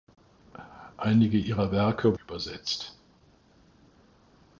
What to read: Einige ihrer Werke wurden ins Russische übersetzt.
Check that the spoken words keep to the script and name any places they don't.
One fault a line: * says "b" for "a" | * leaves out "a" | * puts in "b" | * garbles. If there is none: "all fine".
* leaves out "wurden ins Russische"